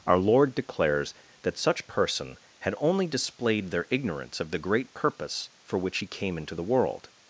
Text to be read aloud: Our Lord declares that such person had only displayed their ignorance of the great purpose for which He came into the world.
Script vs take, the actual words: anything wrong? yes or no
no